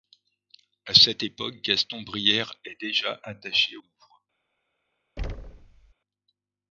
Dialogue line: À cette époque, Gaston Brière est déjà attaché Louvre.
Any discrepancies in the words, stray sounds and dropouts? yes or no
yes